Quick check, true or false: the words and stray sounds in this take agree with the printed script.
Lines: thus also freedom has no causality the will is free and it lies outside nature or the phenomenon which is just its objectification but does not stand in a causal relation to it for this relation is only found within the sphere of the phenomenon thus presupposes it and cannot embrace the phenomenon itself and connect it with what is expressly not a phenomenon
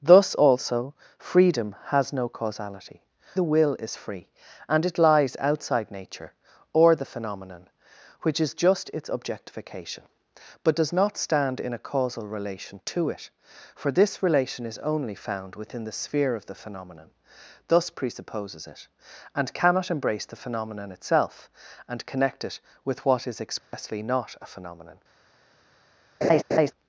false